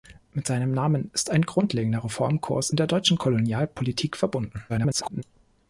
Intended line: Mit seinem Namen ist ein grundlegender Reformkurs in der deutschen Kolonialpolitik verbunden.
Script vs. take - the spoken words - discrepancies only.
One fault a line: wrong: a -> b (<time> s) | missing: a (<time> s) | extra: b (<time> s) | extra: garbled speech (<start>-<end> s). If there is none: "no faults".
extra: garbled speech (4.7-5.2 s)